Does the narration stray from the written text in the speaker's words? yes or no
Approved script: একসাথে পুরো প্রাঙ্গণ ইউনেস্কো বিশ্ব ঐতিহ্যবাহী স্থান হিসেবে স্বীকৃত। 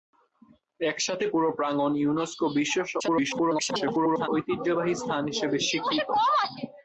yes